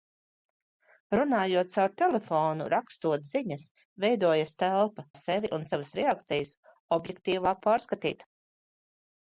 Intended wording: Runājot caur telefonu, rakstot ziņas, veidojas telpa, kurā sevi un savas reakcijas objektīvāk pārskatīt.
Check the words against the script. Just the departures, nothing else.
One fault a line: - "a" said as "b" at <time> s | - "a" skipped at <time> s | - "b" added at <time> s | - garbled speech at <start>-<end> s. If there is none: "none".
- "kurā" skipped at 5.0 s